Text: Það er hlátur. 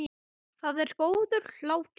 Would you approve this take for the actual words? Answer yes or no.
no